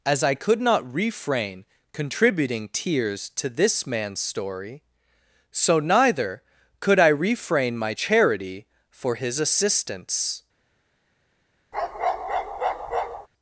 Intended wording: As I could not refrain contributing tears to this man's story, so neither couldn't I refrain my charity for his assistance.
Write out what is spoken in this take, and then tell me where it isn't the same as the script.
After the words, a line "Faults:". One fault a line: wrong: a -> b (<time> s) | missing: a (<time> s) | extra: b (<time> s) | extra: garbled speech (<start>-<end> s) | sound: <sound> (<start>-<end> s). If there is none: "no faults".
As I could not refrain contributing tears to this man's story, so neither could I refrain my charity for his assistance.
Faults:
wrong: couldn't -> could (6.8 s)
sound: bark (11.7-13.3 s)